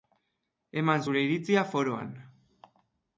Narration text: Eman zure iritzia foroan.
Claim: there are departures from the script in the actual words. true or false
false